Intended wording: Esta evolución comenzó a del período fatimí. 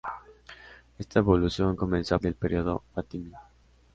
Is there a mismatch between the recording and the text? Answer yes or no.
no